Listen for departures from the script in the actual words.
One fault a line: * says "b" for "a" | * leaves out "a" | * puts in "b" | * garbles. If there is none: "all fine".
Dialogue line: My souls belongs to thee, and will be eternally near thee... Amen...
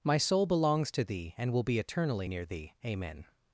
* says "soul" for "souls"